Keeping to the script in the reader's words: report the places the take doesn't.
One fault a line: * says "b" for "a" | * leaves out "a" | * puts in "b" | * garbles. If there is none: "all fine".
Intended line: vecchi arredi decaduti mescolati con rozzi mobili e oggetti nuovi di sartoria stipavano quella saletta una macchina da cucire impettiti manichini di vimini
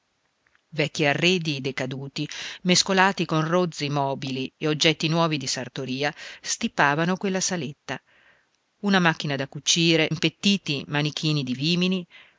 all fine